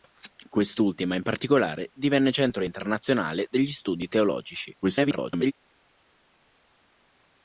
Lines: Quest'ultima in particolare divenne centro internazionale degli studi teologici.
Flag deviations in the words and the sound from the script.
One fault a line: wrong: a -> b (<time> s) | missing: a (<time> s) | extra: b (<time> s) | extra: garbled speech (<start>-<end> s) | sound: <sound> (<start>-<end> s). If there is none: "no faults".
extra: garbled speech (4.8-5.5 s)